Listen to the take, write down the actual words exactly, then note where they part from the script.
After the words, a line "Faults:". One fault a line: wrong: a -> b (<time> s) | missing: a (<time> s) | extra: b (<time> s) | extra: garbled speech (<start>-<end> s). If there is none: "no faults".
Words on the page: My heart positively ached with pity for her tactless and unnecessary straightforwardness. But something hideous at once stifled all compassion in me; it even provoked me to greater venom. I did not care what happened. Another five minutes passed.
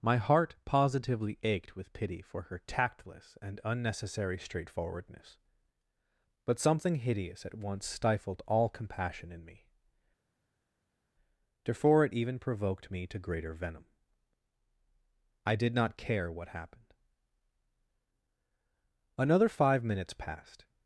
My heart positively ached with pity for her tactless and unnecessary straightforwardness. But something hideous at once stifled all compassion in me; therefore it even provoked me to greater venom. I did not care what happened. Another five minutes passed.
Faults:
extra: therefore (11.6 s)